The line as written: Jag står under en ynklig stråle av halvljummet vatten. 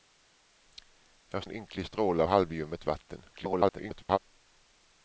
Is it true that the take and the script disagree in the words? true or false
true